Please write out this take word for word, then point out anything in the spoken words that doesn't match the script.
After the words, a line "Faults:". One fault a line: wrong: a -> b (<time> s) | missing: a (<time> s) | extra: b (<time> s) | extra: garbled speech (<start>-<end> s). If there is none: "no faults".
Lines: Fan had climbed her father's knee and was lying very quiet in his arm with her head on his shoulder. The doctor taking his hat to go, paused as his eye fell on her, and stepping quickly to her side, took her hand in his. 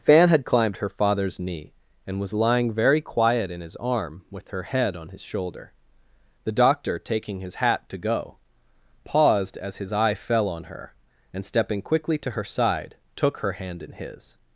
Fan had climbed her father's knee and was lying very quiet in his arm with her head on his shoulder. The doctor taking his hat to go, paused as his eye fell on her, and stepping quickly to her side, took her hand in his.
Faults:
no faults